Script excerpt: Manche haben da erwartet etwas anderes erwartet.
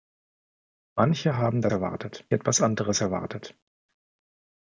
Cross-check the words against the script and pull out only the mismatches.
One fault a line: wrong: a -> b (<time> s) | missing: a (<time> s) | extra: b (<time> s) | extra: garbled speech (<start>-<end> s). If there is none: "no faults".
no faults